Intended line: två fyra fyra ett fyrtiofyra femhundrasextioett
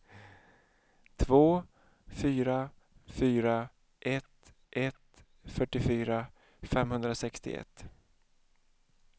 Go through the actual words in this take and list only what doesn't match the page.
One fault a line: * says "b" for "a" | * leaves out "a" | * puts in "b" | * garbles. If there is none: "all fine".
* puts in "ett"